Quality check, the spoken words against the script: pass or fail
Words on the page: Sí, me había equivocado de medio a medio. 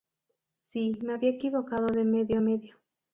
pass